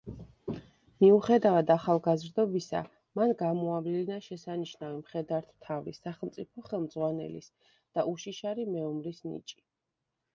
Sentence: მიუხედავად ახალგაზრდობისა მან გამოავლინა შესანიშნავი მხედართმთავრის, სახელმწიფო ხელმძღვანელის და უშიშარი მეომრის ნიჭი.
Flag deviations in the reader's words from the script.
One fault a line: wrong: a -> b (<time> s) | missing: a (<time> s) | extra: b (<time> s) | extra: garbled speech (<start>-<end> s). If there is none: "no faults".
no faults